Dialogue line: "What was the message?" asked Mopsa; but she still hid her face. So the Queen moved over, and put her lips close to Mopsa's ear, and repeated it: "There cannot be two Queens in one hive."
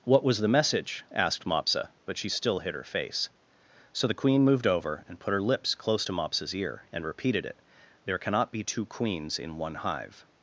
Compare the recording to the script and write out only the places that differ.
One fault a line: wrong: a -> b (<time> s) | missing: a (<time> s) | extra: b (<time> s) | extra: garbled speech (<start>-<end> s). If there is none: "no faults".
no faults